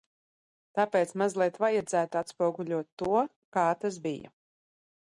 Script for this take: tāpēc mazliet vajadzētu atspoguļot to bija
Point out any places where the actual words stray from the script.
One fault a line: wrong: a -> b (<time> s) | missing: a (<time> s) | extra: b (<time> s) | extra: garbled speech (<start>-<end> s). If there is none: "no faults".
extra: kā tas (3.6 s)